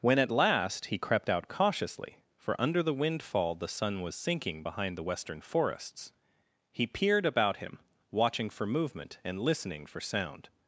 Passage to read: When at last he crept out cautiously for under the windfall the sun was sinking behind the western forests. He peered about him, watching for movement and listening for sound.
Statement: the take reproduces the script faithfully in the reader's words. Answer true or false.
true